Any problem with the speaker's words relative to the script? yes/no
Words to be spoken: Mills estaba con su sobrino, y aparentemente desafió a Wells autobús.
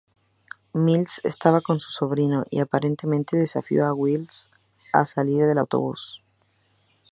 yes